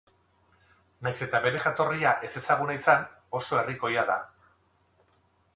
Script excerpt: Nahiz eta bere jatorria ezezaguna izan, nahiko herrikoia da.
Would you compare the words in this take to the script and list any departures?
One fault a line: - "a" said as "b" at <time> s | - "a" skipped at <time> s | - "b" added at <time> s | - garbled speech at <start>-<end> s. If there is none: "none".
- "nahiko" said as "oso" at 3.4 s